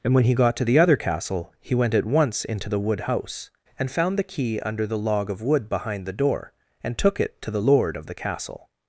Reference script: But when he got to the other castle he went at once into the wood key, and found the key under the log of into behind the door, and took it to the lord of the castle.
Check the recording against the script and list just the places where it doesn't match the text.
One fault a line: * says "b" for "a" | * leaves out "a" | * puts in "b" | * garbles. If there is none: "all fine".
* says "And" for "But"
* says "house" for "key"
* says "wood" for "into"